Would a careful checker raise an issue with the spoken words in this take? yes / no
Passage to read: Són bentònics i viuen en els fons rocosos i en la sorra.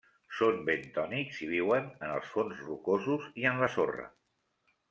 no